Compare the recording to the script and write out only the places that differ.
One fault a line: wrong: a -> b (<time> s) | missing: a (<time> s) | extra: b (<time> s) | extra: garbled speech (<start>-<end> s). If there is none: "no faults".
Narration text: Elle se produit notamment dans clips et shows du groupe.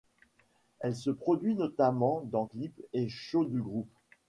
no faults